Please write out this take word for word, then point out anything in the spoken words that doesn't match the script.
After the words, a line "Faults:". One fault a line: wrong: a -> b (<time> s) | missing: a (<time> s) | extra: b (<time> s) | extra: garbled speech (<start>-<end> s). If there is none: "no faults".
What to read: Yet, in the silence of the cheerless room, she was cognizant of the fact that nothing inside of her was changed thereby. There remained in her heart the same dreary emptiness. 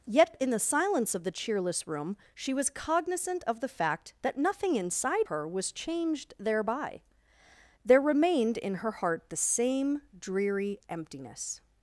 Yet, in the silence of the cheerless room, she was cognizant of the fact that nothing inside her was changed thereby. There remained in her heart the same dreary emptiness.
Faults:
missing: of (5.3 s)